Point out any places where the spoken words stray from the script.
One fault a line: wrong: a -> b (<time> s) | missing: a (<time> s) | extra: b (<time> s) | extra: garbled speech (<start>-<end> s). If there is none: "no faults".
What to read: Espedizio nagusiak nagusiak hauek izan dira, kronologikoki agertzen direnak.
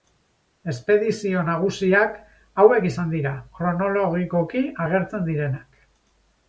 missing: nagusiak (2.2 s)